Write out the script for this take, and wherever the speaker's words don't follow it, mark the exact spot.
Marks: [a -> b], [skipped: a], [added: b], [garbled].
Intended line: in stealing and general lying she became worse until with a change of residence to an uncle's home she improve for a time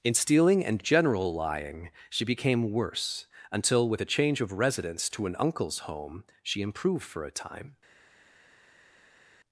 in stealing and general lying she became worse until with a change of residence to an uncle's home she [improve -> improved] for a time